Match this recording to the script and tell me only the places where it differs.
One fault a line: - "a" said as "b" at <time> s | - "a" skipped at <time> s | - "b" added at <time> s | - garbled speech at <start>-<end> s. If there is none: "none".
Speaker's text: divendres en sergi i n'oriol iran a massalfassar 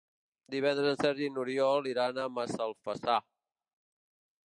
none